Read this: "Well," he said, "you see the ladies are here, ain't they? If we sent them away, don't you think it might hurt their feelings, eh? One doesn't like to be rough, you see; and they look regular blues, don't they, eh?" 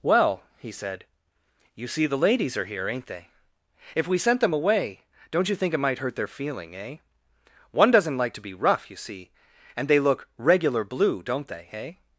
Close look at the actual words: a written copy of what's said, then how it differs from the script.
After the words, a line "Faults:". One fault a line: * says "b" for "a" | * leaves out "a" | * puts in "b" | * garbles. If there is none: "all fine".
"Well," he said, "you see the ladies are here, ain't they? If we sent them away, don't you think it might hurt their feeling, eh? One doesn't like to be rough, you see; and they look regular blue, don't they, eh?"
Faults:
* says "feeling" for "feelings"
* says "blue" for "blues"